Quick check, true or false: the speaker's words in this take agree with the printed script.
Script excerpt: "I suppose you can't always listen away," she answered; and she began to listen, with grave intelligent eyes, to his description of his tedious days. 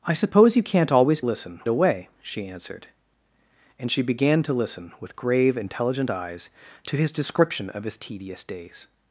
true